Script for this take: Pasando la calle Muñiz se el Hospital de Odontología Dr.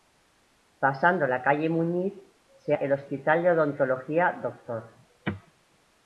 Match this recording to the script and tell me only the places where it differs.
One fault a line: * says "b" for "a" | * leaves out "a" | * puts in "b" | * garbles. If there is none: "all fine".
all fine